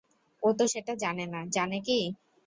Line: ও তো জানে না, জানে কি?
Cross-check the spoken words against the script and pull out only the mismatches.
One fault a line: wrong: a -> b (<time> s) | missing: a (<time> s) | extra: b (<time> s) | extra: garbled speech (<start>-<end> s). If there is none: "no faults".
extra: সেটা (0.7 s)